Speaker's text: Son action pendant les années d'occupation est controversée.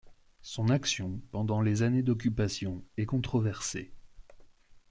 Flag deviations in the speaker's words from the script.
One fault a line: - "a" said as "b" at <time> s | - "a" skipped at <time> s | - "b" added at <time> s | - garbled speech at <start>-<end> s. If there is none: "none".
none